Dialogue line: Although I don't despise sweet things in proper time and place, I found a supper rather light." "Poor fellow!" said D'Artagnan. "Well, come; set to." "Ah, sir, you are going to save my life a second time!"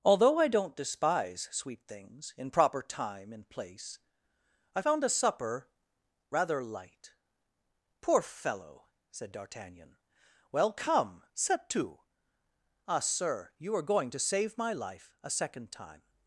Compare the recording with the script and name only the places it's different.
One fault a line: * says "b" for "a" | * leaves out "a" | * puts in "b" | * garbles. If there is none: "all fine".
all fine